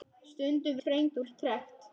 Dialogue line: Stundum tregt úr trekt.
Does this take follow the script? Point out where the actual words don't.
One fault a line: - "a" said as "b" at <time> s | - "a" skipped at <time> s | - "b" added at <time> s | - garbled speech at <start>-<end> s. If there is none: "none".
none